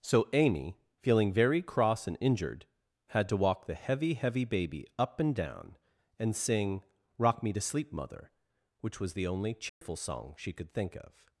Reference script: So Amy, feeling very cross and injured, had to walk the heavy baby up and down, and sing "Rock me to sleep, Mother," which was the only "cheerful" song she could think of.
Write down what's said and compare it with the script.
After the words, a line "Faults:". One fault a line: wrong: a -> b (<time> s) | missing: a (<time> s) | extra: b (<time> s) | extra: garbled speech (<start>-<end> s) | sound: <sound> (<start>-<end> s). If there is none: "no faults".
So Amy, feeling very cross and injured, had to walk the heavy heavy baby up and down, and sing "Rock me to sleep, Mother," which was the only "cheerful" song she could think of.
Faults:
extra: heavy (4.2 s)
sound: dropout (9.7-9.8 s)